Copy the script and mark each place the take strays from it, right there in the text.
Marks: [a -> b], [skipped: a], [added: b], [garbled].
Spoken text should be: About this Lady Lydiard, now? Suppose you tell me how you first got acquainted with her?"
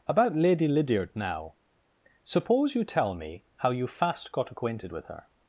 About [skipped: this] Lady Lydiard, now? Suppose you tell me how you [first -> fast] got acquainted with her?"